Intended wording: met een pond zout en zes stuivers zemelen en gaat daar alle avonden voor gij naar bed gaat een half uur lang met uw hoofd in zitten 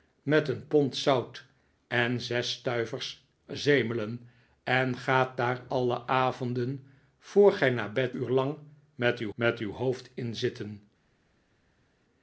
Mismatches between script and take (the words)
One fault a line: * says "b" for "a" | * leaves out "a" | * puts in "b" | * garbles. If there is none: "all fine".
* says "uur lang met uw" for "gaat een half uur lang"